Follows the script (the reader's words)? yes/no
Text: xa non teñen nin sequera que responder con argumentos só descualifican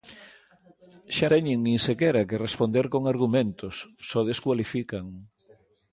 no